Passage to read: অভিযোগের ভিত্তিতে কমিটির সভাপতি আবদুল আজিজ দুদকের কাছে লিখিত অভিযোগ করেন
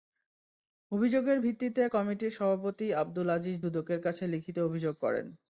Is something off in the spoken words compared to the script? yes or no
no